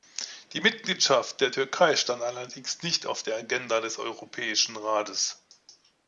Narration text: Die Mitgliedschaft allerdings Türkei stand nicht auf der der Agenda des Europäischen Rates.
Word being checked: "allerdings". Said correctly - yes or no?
no